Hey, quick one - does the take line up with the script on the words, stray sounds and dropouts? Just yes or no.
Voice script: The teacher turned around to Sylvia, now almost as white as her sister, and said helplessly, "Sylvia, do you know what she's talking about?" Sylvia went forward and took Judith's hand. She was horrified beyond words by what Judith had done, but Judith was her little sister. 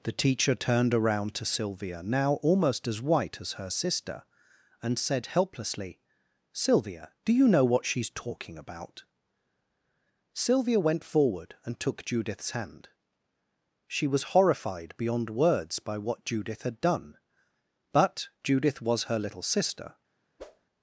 no